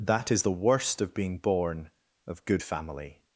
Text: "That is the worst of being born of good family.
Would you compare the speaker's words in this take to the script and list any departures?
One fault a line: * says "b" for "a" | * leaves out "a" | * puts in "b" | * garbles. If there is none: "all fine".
all fine